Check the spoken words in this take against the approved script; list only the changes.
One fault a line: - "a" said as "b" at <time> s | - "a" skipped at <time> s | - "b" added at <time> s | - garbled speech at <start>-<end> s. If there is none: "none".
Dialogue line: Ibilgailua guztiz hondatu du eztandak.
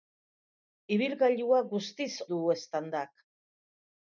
- "hondatu" skipped at 2.1 s